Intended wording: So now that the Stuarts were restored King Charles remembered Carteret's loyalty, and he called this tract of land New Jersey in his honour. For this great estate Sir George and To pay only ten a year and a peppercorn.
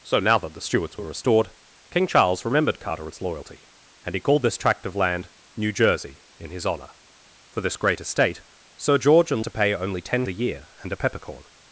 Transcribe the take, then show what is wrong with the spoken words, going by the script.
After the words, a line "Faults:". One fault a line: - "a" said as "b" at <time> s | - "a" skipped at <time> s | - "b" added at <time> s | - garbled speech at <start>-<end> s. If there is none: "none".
So now that the Stuarts were restored King Charles remembered Carteret's loyalty, and he called this tract of land New Jersey in his honour. For this great estate Sir George and To pay only ten a year and a peppercorn.
Faults:
none